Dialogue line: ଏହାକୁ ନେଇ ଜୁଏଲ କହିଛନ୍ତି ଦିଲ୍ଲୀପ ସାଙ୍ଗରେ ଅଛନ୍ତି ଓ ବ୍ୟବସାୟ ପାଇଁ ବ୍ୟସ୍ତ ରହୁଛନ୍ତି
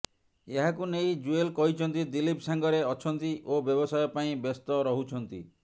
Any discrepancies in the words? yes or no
no